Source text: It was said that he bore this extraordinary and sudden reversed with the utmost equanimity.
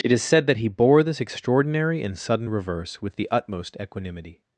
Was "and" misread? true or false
false